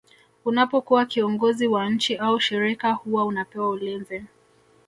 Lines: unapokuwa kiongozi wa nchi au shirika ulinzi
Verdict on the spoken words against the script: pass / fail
fail